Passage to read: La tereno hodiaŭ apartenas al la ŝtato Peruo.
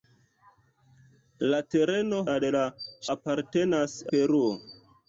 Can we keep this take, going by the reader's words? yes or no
no